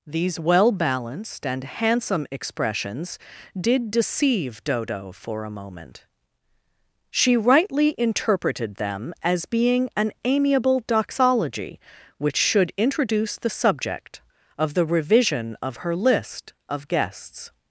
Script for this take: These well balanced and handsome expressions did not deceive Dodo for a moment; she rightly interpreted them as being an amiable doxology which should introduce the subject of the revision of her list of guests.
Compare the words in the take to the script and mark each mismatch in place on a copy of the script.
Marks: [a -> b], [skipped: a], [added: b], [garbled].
These well balanced and handsome expressions did [skipped: not] deceive Dodo for a moment; she rightly interpreted them as being an amiable doxology which should introduce the subject of the revision of her list of guests.